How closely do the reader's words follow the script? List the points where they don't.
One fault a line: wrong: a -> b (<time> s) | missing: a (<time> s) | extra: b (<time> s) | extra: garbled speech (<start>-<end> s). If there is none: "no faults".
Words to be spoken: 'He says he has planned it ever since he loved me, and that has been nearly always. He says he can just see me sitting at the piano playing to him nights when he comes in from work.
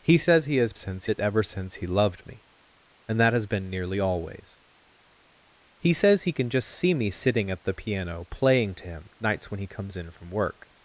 wrong: planned -> since (0.7 s)